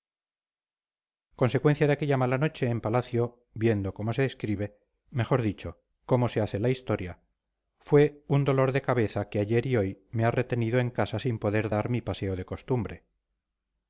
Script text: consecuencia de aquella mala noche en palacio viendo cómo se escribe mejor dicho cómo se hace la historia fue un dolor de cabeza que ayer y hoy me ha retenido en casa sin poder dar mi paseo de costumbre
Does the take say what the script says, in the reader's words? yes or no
yes